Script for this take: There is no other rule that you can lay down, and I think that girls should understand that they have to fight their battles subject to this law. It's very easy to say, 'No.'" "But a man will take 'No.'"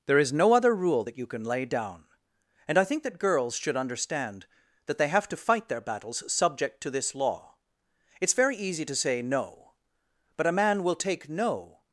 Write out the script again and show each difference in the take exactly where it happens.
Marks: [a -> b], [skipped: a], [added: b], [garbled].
There is no other rule that you can lay down, and I think that girls should understand that they have to fight their battles subject to this law. It's very easy to say, 'No.'" "But a man will take 'No.'"